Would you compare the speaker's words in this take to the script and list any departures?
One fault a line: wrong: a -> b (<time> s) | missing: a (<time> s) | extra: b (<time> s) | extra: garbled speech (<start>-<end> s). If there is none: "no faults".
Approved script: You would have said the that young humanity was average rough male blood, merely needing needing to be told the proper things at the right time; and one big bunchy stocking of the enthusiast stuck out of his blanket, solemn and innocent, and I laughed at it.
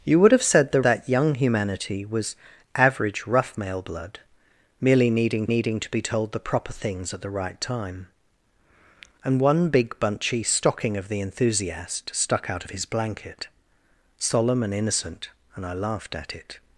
no faults